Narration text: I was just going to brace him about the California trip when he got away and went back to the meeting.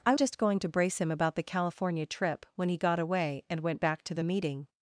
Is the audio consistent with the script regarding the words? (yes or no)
no